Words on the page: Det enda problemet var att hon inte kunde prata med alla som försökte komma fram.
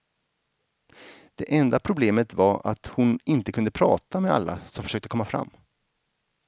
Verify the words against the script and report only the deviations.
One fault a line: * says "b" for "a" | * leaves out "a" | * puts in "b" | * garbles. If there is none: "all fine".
all fine